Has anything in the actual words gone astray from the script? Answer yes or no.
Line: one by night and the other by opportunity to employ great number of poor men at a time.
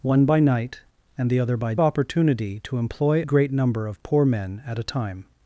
no